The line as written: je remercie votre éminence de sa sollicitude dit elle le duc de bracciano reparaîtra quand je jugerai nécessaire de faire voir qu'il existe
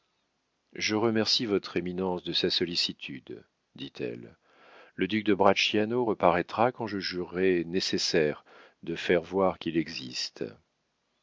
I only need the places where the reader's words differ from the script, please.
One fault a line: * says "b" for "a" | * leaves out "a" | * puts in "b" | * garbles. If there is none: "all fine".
all fine